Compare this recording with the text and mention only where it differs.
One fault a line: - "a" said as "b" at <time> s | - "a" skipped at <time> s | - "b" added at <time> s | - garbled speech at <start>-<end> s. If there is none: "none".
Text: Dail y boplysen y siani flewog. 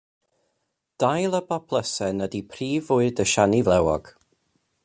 - "ydy prif fwyd" added at 2.3 s